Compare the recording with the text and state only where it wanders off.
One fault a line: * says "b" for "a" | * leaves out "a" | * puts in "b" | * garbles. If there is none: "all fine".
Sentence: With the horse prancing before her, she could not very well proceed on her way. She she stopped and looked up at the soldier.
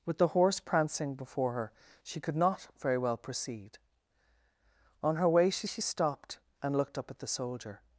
all fine